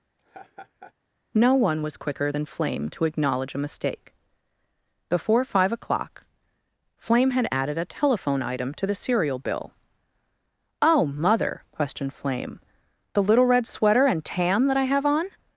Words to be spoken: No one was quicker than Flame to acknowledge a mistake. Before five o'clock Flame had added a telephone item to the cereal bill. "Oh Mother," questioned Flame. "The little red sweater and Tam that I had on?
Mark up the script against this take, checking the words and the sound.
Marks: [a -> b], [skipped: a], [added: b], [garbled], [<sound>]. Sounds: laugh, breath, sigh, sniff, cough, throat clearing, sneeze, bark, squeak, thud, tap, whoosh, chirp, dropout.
[laugh] No one was quicker than Flame to acknowledge a mistake. Before five o'clock Flame had added a telephone item to the cereal bill. "Oh Mother," questioned Flame. "The little red sweater and Tam that I [had -> have] on?